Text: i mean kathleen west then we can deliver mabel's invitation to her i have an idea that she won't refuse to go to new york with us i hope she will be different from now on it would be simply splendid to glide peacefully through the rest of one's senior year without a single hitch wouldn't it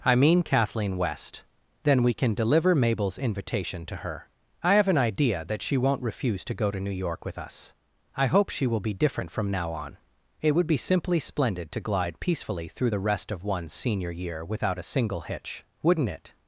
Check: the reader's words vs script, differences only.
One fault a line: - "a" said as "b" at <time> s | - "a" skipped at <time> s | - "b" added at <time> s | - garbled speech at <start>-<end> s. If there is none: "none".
none